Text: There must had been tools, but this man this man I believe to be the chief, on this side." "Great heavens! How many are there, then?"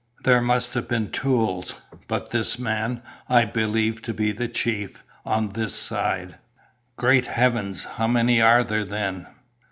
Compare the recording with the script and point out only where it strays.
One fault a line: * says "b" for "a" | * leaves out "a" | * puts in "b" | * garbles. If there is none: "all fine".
* says "have" for "had"
* leaves out "this man"